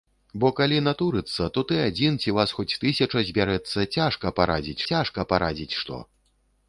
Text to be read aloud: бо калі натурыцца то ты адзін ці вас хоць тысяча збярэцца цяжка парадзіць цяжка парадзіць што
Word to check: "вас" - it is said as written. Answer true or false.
true